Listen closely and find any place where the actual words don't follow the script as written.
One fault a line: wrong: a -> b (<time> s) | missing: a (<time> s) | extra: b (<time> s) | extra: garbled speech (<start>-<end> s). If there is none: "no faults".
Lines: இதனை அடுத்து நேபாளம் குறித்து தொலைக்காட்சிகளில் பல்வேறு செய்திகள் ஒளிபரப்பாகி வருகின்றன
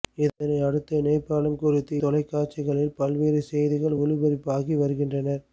no faults